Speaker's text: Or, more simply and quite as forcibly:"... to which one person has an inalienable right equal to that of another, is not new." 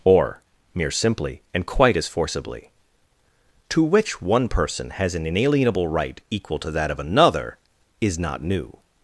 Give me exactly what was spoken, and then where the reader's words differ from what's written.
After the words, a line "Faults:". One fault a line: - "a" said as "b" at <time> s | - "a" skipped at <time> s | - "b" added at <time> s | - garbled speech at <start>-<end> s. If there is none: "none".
Or, mere simply and quite as forcibly:"... to which one person has an inalienable right equal to that of another, is not new."
Faults:
- "more" said as "mere" at 0.7 s